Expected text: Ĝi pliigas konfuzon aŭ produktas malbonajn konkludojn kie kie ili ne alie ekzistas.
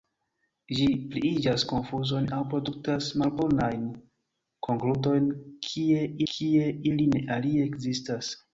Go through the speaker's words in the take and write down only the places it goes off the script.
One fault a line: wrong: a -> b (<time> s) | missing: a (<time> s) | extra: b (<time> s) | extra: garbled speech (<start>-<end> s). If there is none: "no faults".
no faults